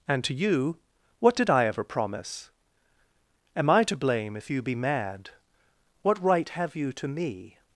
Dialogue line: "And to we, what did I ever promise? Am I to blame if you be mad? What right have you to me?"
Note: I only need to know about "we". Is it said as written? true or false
false